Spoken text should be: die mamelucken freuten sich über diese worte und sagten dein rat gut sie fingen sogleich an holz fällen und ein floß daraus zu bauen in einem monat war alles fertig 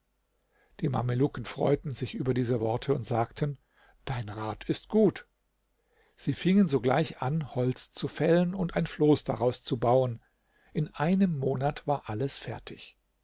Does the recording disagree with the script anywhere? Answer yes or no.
yes